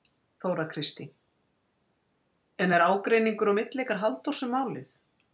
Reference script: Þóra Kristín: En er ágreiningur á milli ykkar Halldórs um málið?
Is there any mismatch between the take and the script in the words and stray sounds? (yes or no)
no